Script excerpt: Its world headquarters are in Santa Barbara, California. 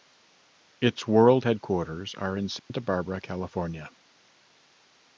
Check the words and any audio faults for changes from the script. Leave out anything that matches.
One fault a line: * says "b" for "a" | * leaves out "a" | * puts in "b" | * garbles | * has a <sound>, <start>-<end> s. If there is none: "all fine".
* has a dropout, 2.6-2.7 s